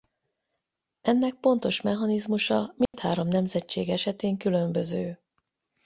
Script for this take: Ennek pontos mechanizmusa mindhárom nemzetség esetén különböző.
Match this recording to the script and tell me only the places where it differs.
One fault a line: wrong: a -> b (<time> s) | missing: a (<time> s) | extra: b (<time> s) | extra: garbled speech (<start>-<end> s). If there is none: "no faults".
no faults